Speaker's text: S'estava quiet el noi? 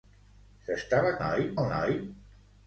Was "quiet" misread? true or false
true